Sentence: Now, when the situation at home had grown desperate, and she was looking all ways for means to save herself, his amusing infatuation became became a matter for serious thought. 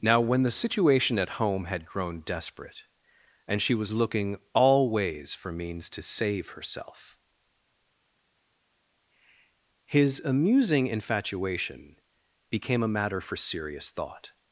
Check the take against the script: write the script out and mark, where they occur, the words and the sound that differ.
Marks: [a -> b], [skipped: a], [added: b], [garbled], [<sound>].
Now, when the situation at home had grown desperate, and she was looking all ways for means to save herself, his amusing infatuation became [skipped: became] a matter for serious thought.